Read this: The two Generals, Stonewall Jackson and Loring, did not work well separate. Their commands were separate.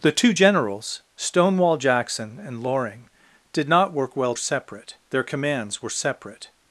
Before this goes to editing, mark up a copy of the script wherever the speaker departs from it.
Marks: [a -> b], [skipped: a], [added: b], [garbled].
The two Generals, Stonewall Jackson and Loring, did not work well separate. Their commands were separate.